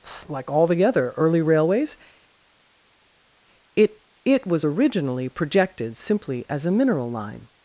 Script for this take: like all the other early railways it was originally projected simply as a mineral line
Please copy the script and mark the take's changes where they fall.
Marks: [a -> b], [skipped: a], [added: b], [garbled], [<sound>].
like all the other early railways it [added: it] was originally projected simply as a mineral line